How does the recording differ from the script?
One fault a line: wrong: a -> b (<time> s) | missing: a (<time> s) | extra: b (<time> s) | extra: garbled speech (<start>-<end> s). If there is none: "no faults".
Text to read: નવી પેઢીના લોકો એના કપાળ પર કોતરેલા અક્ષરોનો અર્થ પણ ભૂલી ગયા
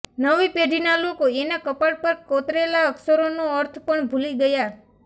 no faults